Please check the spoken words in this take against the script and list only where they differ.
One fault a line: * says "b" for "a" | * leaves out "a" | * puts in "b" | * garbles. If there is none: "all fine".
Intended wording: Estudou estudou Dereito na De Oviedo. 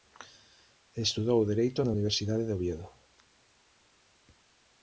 * leaves out "estudou"
* puts in "Universidade"